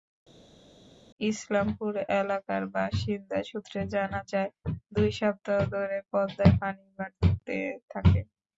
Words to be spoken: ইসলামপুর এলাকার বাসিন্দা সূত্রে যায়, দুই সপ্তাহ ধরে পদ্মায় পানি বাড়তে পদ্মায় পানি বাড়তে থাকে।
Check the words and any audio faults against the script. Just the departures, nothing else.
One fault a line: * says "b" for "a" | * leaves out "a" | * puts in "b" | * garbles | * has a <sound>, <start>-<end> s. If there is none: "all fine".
* puts in "জানা"
* leaves out "পদ্মায় পানি বাড়তে"